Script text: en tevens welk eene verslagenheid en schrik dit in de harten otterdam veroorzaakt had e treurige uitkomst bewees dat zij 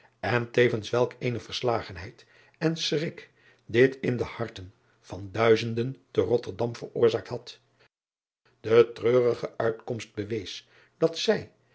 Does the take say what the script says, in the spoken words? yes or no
no